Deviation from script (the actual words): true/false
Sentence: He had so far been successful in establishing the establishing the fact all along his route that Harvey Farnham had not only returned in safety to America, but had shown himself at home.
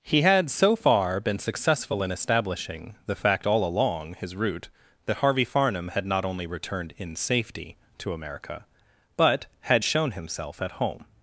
true